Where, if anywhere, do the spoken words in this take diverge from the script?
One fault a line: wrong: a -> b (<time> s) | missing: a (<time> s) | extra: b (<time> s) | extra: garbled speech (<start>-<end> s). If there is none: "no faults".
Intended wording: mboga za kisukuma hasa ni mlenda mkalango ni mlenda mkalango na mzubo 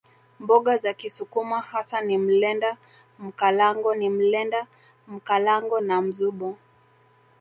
no faults